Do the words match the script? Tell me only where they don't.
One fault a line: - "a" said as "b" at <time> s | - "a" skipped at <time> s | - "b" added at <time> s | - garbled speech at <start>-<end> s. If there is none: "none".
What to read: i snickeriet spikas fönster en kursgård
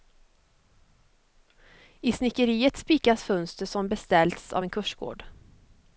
- "som beställts av" added at 3.6 s